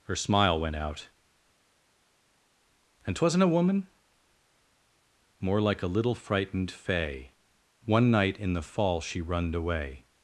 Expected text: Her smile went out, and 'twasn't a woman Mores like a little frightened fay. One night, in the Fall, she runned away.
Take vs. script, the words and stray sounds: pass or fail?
fail